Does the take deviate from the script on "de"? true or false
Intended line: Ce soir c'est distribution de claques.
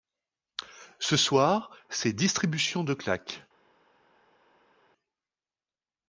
false